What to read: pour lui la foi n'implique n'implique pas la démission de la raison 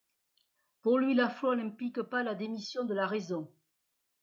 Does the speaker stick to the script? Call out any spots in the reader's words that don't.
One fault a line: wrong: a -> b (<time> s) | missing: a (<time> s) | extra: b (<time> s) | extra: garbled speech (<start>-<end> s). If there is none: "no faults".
missing: n'implique (2.0 s)